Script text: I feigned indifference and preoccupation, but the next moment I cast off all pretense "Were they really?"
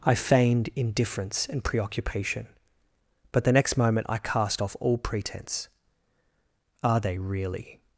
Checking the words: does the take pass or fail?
fail